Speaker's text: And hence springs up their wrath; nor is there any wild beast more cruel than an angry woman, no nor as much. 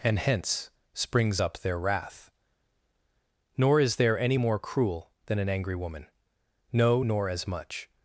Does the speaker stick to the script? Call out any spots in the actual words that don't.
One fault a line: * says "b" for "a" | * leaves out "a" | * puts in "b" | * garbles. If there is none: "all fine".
* leaves out "wild beast"